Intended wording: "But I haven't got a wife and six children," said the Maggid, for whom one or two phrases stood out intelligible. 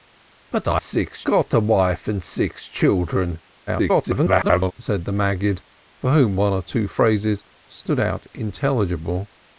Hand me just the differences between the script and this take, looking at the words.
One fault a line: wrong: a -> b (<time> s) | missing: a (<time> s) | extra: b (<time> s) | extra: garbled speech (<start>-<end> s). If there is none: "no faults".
wrong: haven't -> six (0.8 s)
extra: garbled speech (3.7-4.7 s)